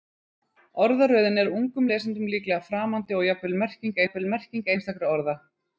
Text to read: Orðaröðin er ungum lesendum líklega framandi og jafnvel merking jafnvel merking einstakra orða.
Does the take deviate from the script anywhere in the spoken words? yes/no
no